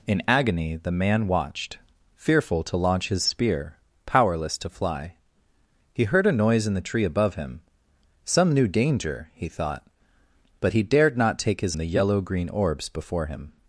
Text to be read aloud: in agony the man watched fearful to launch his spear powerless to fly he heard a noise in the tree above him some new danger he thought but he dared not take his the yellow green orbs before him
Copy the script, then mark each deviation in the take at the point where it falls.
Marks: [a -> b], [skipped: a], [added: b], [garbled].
in agony the man watched fearful to launch his spear powerless to fly he heard a noise in the tree above him some new danger he thought but he dared not take his the yellow green orbs before him